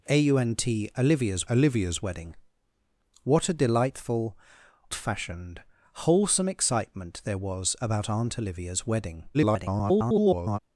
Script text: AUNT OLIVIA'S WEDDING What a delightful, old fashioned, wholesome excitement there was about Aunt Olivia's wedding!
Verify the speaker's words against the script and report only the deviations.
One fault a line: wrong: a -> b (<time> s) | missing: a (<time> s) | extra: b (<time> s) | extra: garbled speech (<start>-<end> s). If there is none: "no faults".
extra: OLIVIA'S (1.5 s)
missing: old (4.4 s)
extra: garbled speech (9.3-10.6 s)